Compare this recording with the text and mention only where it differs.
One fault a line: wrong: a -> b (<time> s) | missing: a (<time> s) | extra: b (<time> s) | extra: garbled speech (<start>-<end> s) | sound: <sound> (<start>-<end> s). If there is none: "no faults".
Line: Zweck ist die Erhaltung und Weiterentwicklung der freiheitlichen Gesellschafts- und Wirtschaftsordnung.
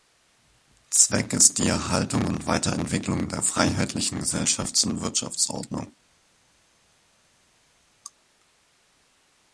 no faults